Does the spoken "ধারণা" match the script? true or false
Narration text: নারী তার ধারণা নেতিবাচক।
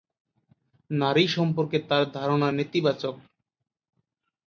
true